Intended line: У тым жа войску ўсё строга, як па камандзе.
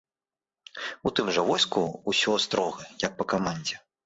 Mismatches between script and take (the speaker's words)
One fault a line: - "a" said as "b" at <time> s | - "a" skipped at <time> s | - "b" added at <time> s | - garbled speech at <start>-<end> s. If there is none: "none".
none